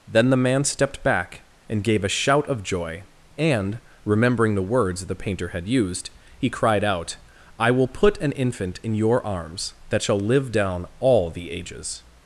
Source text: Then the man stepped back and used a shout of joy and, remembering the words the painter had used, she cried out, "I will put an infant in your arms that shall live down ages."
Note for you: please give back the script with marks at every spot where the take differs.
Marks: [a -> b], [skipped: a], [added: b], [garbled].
Then the man stepped back and [used -> gave] a shout of joy and, remembering the words the painter had used, [she -> he] cried out, "I will put an infant in your arms that shall live down [added: all the] ages."